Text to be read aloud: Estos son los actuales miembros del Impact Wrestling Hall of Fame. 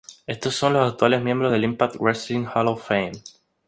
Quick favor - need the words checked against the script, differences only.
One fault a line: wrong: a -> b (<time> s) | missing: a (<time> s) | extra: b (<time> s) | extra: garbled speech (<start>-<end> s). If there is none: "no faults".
no faults